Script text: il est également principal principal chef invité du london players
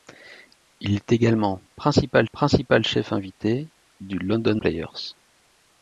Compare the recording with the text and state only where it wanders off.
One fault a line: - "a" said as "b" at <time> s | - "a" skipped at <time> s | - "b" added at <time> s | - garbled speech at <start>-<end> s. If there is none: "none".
none